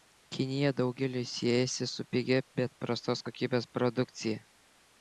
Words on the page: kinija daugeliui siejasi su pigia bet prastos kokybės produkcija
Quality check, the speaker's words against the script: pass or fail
pass